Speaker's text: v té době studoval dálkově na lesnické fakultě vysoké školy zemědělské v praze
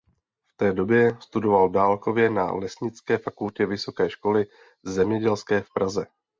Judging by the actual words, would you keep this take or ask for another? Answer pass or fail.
pass